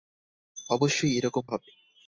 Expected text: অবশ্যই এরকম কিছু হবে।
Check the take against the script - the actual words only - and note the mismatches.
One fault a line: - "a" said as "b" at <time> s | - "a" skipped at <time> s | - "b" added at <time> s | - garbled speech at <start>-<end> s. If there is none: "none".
- "কিছু" skipped at 1.4 s